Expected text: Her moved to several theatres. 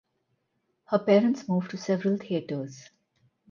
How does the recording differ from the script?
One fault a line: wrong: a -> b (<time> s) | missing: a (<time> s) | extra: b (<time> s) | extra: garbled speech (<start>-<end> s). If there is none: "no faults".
extra: parents (1.0 s)